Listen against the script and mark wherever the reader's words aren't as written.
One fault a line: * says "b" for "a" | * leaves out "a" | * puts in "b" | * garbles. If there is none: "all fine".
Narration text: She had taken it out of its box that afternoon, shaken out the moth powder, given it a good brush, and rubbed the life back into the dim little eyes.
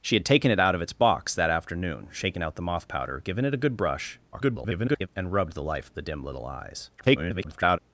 * garbles
* leaves out "back into"
* garbles